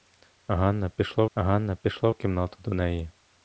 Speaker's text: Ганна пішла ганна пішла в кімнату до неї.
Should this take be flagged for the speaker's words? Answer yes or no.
no